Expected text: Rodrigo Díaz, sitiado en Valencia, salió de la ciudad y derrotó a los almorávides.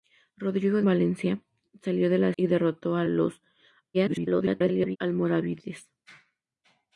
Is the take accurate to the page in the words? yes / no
no